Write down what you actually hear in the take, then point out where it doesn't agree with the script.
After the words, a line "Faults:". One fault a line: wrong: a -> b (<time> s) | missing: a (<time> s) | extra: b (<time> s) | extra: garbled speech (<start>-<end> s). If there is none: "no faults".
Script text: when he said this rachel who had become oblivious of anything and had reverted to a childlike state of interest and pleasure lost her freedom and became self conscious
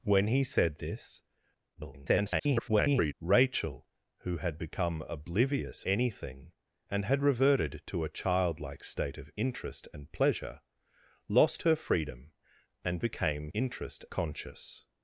when he said this [garbled] rachel who had become oblivious anything and had reverted to a childlike state of interest and pleasure lost her freedom and became interest conscious
Faults:
extra: garbled speech (1.7-3.1 s)
missing: of (5.8 s)
wrong: self -> interest (13.5 s)